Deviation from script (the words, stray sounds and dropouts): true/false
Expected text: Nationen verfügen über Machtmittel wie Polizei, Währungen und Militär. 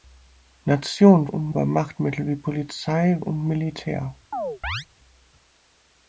true